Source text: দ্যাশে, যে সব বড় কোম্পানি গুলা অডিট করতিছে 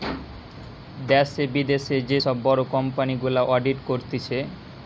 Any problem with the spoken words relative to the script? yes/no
yes